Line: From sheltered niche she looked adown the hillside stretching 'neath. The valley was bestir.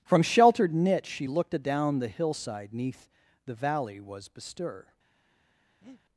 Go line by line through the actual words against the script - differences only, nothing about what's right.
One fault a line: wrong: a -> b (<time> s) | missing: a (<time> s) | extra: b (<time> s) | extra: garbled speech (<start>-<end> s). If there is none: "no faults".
missing: stretching (2.7 s)